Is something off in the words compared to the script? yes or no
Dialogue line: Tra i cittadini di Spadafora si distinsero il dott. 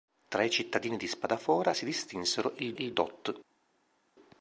yes